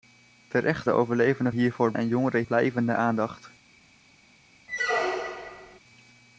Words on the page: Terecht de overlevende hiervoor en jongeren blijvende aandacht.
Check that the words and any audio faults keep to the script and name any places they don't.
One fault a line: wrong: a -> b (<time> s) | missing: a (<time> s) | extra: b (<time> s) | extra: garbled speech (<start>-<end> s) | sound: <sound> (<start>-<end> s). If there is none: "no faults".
sound: squeak (4.7-5.8 s)